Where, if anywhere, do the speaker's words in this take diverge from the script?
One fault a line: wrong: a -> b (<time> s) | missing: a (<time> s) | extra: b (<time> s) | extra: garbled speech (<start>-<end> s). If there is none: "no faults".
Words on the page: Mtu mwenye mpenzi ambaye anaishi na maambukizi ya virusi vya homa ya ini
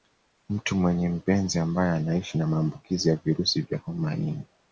no faults